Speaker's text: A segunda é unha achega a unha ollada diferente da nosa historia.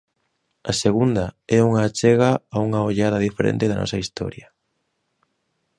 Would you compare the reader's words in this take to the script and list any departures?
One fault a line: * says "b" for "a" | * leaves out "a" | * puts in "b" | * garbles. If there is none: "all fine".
all fine